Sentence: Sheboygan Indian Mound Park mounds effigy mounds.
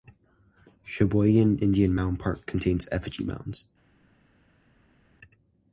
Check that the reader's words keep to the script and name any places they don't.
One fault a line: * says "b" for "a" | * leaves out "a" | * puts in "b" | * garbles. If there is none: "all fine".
* says "contains" for "mounds"